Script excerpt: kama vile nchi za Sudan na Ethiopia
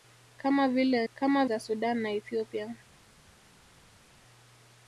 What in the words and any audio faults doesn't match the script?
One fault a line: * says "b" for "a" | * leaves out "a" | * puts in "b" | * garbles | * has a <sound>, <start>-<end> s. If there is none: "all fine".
* says "kama" for "nchi"